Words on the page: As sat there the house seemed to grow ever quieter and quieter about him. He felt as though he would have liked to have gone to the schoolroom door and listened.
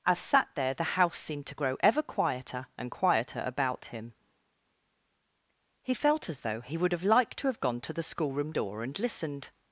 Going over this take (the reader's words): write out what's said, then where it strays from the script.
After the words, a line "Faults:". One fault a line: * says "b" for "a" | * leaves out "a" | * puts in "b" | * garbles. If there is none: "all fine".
As sat there the house seemed to grow ever quieter and quieter about him. He felt as though he would have liked to have gone to the schoolroom door and listened.
Faults:
all fine